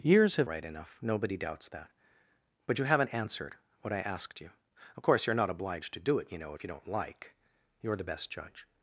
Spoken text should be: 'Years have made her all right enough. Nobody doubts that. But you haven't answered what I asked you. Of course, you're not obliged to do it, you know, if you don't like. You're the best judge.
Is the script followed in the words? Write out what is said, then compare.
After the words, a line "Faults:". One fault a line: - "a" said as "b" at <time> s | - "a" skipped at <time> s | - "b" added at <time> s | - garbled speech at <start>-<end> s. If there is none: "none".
'Years have right enough. Nobody doubts that. But you haven't answered what I asked you. Of course, you're not obliged to do it, you know, if you don't like. You're the best judge.
Faults:
- "made her all" skipped at 0.5 s